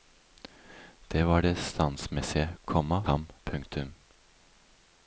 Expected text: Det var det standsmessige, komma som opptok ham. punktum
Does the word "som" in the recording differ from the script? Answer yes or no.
yes